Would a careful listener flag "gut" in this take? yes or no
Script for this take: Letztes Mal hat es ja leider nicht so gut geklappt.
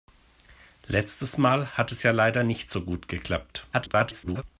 no